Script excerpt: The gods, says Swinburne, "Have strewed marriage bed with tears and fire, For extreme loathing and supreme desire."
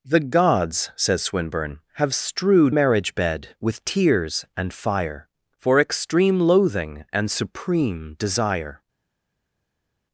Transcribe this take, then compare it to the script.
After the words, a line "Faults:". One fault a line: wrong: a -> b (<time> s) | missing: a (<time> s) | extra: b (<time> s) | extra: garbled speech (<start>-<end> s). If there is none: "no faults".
The gods, says Swinburne, "Have strewed marriage bed with tears and fire, For extreme loathing and supreme desire."
Faults:
no faults